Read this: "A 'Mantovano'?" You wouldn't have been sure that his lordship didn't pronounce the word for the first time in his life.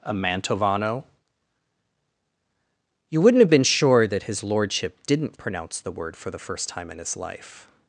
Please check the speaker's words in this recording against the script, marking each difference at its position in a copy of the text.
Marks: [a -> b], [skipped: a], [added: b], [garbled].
"A 'Mantovano'?" You wouldn't have been sure that his lordship didn't pronounce the word for the first time in his life.